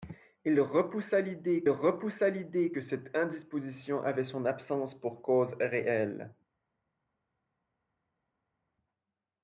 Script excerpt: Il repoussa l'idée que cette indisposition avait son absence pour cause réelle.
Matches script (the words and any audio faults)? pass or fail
fail